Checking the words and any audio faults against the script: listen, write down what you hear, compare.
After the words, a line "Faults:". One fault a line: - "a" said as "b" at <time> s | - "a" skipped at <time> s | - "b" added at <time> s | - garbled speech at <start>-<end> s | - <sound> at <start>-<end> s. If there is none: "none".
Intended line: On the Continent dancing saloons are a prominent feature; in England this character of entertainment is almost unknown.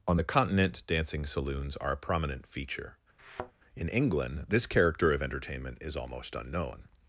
On the Continent dancing saloons are a prominent feature; in England this character of entertainment is almost unknown.
Faults:
- thud at 3.2-3.5 s